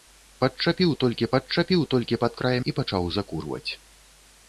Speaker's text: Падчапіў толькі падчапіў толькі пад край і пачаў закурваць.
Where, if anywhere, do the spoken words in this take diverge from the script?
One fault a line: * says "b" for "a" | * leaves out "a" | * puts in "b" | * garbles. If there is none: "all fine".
all fine